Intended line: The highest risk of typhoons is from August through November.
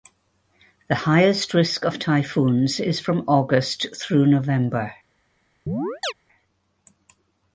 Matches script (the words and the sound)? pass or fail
fail